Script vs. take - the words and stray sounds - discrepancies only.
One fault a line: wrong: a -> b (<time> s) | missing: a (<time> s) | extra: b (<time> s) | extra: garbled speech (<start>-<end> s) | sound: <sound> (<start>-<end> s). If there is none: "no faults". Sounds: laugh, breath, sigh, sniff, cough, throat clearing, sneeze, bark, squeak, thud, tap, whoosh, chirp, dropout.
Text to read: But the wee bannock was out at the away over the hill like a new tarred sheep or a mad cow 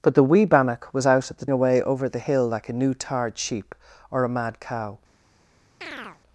sound: chirp (5.8-6.2 s)